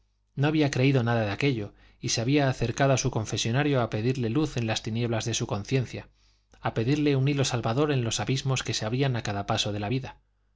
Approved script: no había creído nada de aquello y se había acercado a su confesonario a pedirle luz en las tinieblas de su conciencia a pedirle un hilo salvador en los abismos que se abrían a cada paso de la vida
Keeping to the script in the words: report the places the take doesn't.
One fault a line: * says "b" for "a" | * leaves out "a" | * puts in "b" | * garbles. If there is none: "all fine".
all fine